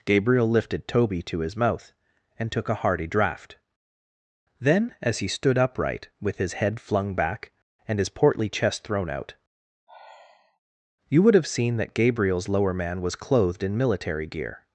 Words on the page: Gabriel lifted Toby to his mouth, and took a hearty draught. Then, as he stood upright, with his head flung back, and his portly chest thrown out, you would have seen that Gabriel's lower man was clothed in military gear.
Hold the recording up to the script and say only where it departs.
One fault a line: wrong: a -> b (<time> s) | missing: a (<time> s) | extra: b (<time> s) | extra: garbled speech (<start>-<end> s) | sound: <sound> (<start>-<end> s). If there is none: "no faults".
sound: sigh (9.9-10.6 s)